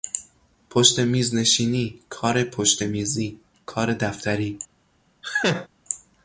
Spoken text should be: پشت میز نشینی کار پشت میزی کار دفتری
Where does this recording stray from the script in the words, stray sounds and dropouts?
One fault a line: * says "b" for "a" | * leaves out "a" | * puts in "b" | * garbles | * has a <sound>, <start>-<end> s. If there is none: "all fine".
* has a laugh, 5.2-5.7 s